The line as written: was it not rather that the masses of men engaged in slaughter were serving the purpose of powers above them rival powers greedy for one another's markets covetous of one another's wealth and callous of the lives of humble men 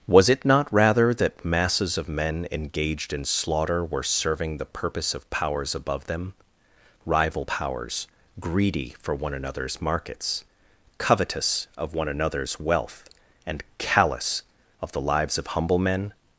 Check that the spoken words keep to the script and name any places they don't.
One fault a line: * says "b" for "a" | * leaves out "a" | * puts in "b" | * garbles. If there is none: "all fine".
* leaves out "the"